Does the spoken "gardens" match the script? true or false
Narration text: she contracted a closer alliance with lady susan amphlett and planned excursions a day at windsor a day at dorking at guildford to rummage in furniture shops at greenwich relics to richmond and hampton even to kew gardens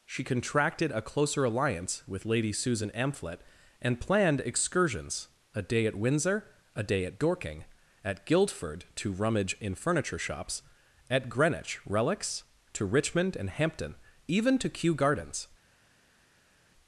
true